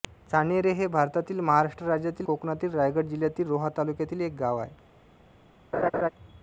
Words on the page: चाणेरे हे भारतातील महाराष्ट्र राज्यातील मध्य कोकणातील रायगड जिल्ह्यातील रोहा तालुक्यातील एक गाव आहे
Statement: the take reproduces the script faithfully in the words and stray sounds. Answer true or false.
false